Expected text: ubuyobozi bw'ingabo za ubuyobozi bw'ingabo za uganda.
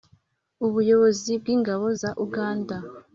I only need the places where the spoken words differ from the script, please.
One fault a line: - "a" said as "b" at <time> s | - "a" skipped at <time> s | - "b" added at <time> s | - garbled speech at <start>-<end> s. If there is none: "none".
- "ubuyobozi bw'ingabo za" skipped at 2.1 s